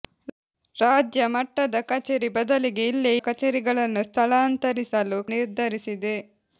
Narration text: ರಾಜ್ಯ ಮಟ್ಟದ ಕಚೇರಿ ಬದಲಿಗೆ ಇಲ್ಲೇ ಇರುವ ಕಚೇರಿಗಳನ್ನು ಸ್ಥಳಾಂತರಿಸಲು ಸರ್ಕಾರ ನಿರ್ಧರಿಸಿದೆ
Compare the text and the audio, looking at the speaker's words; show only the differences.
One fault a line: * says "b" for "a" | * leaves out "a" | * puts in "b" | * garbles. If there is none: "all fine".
* leaves out "ಇರುವ"
* leaves out "ಸರ್ಕಾರ"